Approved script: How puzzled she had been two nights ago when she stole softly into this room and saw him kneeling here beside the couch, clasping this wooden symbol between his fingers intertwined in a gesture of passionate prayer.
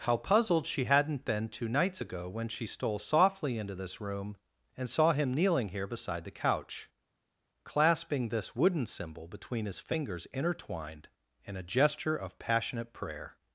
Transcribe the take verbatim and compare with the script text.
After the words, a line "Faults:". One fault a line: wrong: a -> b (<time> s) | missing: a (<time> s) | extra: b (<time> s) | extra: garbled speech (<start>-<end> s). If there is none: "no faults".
How puzzled she hadn't been two nights ago when she stole softly into this room and saw him kneeling here beside the couch, clasping this wooden symbol between his fingers intertwined in a gesture of passionate prayer.
Faults:
wrong: had -> hadn't (0.8 s)